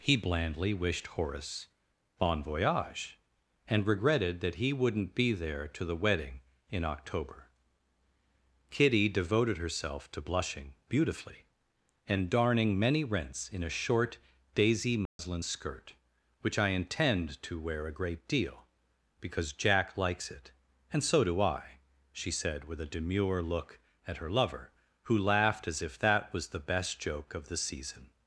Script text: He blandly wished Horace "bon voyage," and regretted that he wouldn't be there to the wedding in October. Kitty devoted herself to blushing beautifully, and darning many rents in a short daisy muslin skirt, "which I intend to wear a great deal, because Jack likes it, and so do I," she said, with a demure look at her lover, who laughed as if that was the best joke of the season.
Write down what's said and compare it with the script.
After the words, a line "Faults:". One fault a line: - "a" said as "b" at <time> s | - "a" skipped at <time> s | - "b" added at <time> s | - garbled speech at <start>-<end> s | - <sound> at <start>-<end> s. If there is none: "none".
He blandly wished Horace "bon voyage," and regretted that he wouldn't be there to the wedding in October. Kitty devoted herself to blushing beautifully, and darning many rents in a short daisy muslin skirt, "which I intend to wear a great deal, because Jack likes it, and so do I," she said, with a demure look at her lover, who laughed as if that was the best joke of the season.
Faults:
- dropout at 15.1-15.2 s